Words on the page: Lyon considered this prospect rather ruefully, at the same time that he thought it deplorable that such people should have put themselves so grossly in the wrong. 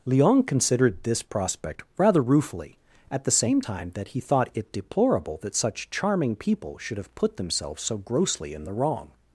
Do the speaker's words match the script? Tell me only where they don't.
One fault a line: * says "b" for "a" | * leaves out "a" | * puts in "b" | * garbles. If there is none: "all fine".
* puts in "charming"